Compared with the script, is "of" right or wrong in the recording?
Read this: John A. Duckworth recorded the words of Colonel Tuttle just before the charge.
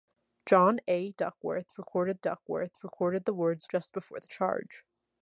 wrong